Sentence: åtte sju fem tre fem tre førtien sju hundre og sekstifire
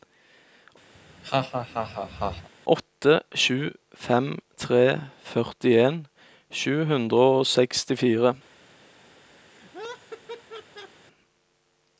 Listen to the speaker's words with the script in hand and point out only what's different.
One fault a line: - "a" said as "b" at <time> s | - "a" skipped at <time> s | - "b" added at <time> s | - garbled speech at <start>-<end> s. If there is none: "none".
- "fem tre" skipped at 4.8 s